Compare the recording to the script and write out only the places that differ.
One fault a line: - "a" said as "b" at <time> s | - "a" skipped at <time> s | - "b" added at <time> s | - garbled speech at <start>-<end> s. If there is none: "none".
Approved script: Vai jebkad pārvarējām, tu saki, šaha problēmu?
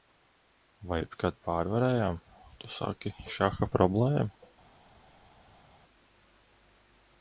none